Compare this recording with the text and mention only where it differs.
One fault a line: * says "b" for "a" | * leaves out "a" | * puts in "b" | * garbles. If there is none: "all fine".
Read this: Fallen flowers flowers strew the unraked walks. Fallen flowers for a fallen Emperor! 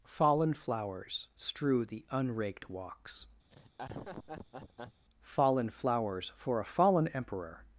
* leaves out "flowers"